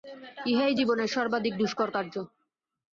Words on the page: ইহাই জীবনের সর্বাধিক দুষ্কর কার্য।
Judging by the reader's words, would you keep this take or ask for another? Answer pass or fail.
pass